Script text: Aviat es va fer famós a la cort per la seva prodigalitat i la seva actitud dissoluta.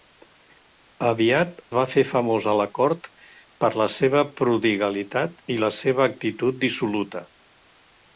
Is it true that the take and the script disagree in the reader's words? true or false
true